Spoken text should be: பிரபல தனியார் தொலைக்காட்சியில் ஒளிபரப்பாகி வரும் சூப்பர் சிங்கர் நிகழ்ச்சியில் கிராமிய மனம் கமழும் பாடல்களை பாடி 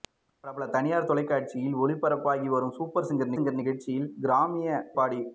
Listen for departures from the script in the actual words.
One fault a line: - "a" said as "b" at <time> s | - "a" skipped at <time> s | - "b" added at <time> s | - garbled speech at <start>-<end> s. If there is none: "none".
- "சிங்கர்" added at 3.3 s
- "மனம் கமழும் பாடல்களை" skipped at 4.8 s